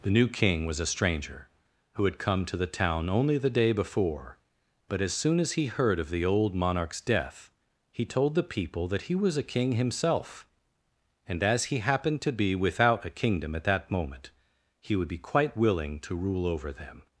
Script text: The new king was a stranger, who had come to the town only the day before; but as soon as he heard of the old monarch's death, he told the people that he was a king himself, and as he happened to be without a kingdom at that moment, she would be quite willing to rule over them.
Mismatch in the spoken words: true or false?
true